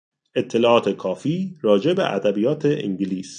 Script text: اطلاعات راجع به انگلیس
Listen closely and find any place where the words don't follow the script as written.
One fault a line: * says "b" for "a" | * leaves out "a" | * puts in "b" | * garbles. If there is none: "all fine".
* puts in "کافی"
* puts in "ادبیات"